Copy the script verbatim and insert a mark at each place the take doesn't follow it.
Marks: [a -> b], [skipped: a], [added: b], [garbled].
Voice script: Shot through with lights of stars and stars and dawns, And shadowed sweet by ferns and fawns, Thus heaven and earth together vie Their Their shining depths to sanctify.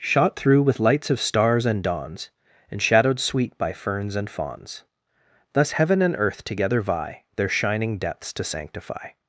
Shot through with lights of stars and [skipped: stars and] dawns, And shadowed sweet by ferns and fawns, Thus heaven and earth together vie Their [skipped: Their] shining depths to sanctify.